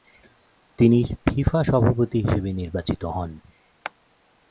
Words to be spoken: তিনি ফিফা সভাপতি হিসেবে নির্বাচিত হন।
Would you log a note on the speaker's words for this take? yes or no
no